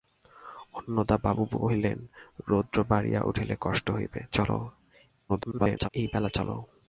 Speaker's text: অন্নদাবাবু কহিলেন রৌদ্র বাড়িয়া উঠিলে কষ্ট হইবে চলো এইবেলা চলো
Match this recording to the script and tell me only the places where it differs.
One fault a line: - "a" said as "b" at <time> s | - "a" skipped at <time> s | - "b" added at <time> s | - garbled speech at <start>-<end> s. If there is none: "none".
- garbled speech at 5.3-5.9 s